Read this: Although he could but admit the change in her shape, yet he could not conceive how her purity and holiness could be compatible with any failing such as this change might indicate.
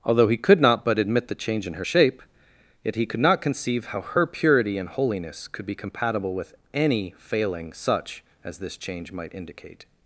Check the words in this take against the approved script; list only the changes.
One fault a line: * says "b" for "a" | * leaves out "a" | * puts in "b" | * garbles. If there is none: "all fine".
* puts in "not"